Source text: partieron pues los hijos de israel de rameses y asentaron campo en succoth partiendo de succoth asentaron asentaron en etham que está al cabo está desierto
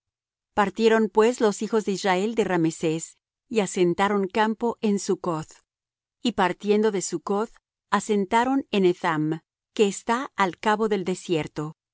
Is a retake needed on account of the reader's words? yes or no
yes